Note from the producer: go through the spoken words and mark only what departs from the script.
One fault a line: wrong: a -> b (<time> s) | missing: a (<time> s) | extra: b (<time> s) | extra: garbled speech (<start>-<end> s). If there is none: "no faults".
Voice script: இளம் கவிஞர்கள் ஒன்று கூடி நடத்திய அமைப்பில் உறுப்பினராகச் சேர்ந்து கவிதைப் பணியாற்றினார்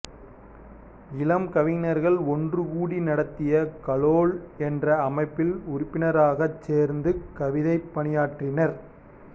extra: கலோல் என்ற (3.9 s)